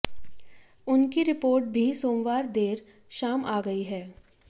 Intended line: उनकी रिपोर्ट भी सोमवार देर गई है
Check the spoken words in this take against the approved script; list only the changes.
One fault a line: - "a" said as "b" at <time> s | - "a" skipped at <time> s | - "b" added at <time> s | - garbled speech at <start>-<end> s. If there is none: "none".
- "शाम आ" added at 3.2 s